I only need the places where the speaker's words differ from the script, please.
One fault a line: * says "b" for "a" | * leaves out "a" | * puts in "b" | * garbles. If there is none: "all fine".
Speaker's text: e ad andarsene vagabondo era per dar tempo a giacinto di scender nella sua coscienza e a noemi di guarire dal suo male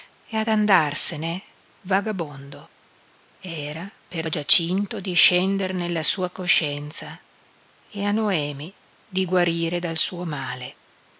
* leaves out "dar tempo"